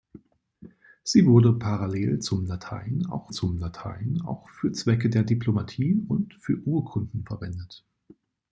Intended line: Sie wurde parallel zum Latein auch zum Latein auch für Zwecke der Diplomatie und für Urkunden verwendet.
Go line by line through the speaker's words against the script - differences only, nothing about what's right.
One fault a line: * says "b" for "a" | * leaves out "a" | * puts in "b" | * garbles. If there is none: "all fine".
all fine